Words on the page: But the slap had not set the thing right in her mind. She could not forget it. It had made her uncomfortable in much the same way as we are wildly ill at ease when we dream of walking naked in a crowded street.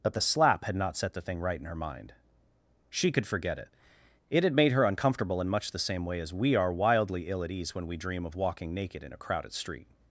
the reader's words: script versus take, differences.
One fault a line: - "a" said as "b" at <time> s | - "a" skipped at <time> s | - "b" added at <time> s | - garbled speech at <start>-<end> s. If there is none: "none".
- "not" skipped at 3.3 s